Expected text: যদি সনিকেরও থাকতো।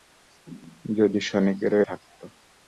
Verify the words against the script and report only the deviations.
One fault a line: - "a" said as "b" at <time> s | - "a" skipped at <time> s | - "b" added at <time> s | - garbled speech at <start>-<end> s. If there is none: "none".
none